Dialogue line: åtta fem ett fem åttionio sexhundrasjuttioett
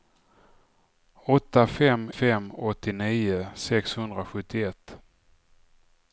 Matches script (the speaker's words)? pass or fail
fail